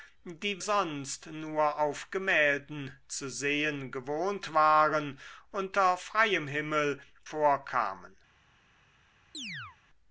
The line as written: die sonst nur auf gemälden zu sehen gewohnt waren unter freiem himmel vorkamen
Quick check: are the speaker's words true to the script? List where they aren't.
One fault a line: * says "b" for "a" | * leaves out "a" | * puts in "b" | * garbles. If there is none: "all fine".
all fine